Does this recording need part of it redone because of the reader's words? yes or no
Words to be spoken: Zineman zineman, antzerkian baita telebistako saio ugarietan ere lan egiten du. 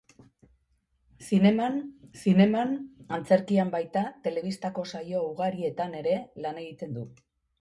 no